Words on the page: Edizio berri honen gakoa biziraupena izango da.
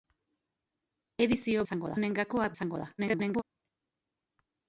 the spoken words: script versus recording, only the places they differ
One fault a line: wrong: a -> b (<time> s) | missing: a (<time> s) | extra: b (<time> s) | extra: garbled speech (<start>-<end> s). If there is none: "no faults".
wrong: berri -> izango (1.6 s)
missing: biziraupena (2.5 s)
extra: garbled speech (3.0-3.4 s)